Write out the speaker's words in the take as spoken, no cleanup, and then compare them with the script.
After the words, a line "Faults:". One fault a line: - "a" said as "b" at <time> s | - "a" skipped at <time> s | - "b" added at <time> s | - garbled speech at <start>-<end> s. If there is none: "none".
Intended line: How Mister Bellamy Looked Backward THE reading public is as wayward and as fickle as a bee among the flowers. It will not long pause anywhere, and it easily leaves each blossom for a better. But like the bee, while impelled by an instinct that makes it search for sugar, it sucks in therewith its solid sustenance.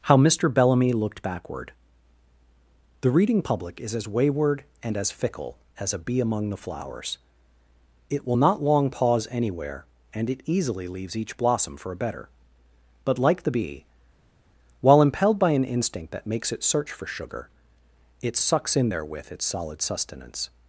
How Mister Bellamy Looked Backward THE reading public is as wayward and as fickle as a bee among the flowers. It will not long pause anywhere, and it easily leaves each blossom for a better. But like the bee, while impelled by an instinct that makes it search for sugar, it sucks in therewith its solid sustenance.
Faults:
none